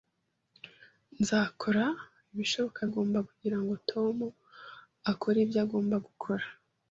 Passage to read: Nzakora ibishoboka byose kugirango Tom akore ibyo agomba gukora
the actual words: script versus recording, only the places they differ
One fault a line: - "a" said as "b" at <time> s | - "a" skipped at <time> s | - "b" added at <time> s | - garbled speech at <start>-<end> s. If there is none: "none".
- "byose" said as "agomba" at 2.9 s